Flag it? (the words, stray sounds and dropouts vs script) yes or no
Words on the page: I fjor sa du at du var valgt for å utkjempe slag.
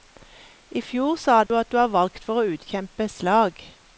yes